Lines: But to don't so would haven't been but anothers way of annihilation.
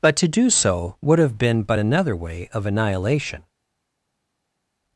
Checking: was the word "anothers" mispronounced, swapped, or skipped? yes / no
yes